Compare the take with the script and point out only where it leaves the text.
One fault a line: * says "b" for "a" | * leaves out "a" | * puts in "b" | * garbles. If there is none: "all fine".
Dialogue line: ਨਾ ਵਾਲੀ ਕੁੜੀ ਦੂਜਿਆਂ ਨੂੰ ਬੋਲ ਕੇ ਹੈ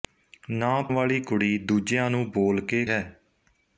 all fine